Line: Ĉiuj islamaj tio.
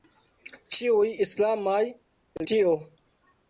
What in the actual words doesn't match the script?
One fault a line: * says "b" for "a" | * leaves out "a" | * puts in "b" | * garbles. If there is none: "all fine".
all fine